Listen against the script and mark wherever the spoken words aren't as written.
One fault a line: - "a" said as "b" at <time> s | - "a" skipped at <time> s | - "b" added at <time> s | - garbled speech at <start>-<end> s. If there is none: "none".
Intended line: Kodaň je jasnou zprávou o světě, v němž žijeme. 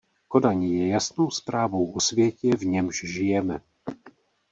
none